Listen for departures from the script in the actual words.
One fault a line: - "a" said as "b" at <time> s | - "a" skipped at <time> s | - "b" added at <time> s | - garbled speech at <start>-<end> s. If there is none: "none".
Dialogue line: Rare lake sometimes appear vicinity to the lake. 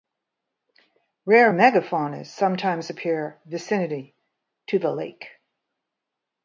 - "lake" said as "megafaunas" at 1.5 s